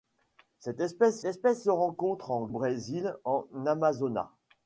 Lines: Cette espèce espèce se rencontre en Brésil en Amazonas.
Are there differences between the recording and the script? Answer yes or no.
no